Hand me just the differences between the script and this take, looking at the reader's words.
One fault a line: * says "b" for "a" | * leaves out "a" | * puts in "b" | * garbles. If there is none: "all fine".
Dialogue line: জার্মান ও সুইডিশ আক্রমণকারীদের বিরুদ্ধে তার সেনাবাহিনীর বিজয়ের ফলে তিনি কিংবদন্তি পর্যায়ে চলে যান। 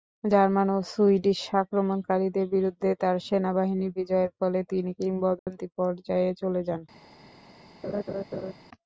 all fine